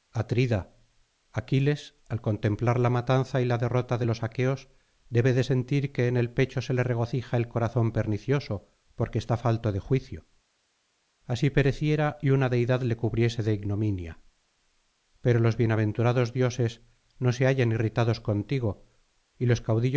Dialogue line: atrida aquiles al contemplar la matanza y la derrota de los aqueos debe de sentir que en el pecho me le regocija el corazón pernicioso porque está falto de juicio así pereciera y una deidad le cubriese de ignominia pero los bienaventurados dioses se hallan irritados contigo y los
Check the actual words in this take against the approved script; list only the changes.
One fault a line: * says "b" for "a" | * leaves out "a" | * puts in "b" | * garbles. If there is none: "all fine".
* says "se" for "me"
* puts in "no"